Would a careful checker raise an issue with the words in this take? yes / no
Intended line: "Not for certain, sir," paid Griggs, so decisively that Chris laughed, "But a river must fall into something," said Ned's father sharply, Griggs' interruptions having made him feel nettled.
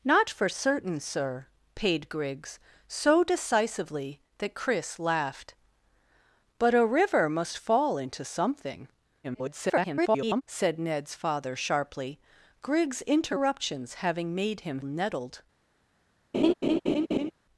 yes